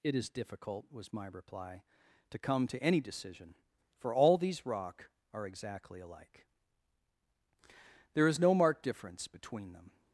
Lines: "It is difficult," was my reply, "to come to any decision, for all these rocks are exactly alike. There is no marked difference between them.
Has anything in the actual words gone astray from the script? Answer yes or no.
yes